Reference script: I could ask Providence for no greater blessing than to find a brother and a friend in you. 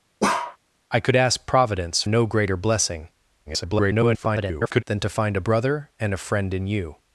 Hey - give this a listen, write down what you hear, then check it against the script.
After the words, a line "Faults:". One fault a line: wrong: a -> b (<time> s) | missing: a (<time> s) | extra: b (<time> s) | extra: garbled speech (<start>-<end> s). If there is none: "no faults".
I could ask Providence no greater blessing [garbled] than to find a brother and a friend in you.
Faults:
missing: for (2.0 s)
extra: garbled speech (3.5-4.8 s)